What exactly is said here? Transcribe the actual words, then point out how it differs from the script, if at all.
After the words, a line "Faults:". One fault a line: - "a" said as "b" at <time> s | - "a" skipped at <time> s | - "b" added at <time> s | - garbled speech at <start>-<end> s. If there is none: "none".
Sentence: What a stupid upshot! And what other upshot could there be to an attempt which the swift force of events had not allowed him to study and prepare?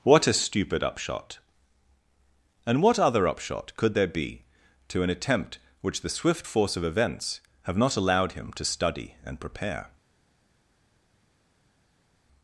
What a stupid upshot! And what other upshot could there be to an attempt which the swift force of events have not allowed him to study and prepare?
Faults:
- "had" said as "have" at 7.6 s